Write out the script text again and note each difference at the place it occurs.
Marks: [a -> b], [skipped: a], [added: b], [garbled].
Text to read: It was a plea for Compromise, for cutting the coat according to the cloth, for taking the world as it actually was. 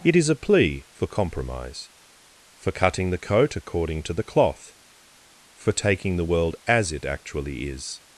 It [was -> is] a plea for Compromise, for cutting the coat according to the cloth, for taking the world as it actually [was. -> is]